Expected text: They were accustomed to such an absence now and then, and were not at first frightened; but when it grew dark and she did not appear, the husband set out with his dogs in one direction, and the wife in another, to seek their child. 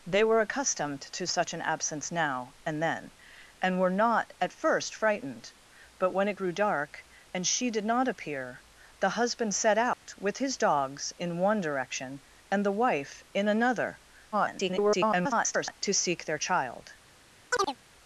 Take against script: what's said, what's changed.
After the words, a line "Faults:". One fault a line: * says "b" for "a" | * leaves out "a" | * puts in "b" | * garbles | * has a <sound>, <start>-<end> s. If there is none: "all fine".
They were accustomed to such an absence now and then, and were not at first frightened; but when it grew dark and she did not appear, the husband set out with his dogs in one direction, and the wife in another, [garbled] to seek their child.
Faults:
* has a dropout, 9.9-10.1 s
* garbles
* has a chirp, 17.5-17.8 s